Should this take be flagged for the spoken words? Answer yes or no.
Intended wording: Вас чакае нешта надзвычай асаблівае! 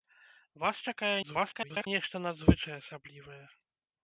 yes